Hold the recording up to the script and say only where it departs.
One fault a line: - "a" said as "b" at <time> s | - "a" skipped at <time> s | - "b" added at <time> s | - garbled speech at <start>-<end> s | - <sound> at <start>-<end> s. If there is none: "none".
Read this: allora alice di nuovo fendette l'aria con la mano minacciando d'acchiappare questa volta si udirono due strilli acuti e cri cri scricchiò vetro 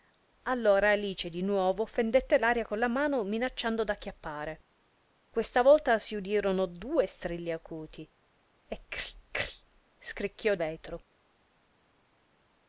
none